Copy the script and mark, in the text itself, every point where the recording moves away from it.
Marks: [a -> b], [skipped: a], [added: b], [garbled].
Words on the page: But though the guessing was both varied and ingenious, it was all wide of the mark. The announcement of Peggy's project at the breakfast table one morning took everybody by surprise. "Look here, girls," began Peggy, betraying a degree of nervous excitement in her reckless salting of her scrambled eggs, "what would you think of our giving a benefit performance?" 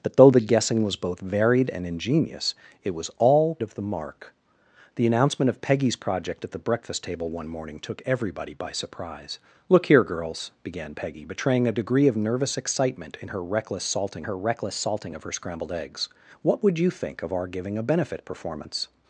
But though the guessing was both varied and ingenious, it was all [skipped: wide] of the mark. The announcement of Peggy's project at the breakfast table one morning took everybody by surprise. "Look here, girls," began Peggy, betraying a degree of nervous excitement in her reckless salting [added: her reckless salting] of her scrambled eggs, "what would you think of our giving a benefit performance?"